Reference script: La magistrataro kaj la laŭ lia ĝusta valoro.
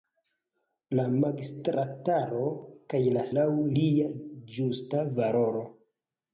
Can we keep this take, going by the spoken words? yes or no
yes